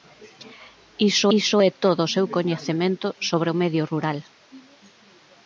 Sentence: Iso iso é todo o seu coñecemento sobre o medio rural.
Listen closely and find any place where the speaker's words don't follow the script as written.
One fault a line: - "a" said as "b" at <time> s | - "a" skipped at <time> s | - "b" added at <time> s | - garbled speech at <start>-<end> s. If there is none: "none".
none